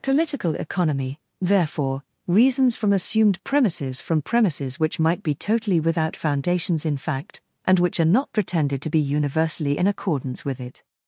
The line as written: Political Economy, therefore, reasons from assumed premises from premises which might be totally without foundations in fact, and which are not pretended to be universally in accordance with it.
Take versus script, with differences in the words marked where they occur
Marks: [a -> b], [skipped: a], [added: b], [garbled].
Political Economy, therefore, reasons from assumed premises from premises which might be totally without foundations in fact, and which are not pretended to be universally in accordance with it.